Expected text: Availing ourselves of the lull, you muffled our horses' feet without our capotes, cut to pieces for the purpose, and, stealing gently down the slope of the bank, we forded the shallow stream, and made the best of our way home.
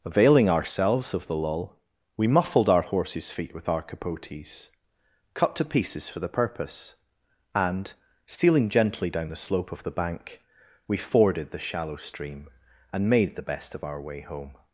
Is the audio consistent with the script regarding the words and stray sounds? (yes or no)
no